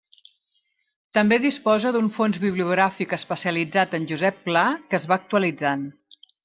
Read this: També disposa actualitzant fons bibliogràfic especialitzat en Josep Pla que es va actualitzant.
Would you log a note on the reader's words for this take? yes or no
yes